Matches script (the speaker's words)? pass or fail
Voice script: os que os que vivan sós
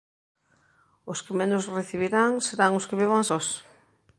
fail